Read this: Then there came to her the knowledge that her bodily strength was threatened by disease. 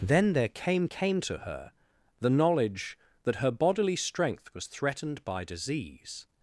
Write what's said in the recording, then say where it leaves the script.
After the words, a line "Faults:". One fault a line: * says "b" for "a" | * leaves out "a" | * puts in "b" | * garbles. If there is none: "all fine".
Then there came came to her the knowledge that her bodily strength was threatened by disease.
Faults:
* puts in "came"